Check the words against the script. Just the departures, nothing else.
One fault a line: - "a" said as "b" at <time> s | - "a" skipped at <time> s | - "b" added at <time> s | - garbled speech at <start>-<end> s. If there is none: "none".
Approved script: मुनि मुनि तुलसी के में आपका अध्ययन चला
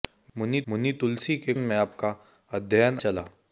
none